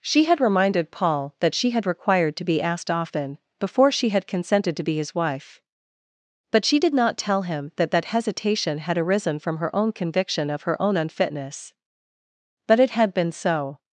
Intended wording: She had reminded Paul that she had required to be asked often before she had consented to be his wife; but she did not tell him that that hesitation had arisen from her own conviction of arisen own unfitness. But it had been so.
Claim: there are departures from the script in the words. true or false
true